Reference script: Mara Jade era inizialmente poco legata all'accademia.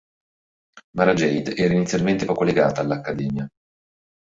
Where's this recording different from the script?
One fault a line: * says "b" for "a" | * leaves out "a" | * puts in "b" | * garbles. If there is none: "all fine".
all fine